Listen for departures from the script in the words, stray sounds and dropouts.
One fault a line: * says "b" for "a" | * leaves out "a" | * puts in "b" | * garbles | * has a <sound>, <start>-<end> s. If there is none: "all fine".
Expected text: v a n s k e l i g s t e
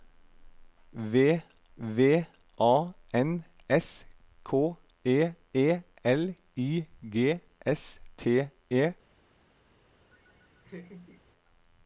* puts in "v"
* puts in "e"
* has a laugh, 10.1-11.2 s